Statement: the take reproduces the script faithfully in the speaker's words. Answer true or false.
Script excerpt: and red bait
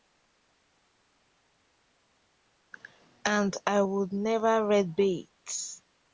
false